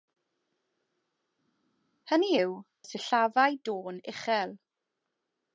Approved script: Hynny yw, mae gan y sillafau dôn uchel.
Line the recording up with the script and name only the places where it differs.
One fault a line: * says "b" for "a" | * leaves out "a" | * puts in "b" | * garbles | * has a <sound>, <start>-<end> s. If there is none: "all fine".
* leaves out "mae gan"